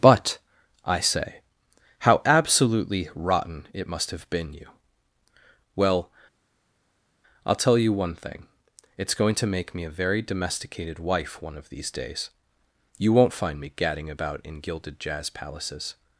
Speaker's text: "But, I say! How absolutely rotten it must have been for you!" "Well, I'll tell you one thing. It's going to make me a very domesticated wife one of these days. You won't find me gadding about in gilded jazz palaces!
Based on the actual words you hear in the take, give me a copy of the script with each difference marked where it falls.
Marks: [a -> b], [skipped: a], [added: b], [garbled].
"But, I say! How absolutely rotten it must have been [skipped: for] you!" "Well, I'll tell you one thing. It's going to make me a very domesticated wife one of these days. You won't find me gadding about in gilded jazz palaces!